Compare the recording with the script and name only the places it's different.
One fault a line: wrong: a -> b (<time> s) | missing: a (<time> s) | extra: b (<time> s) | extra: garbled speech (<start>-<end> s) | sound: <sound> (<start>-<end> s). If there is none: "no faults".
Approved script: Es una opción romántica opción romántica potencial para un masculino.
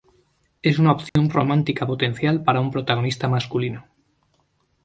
sound: dropout (1.1-1.2 s)
missing: opción romántica (1.9 s)
extra: protagonista (2.7 s)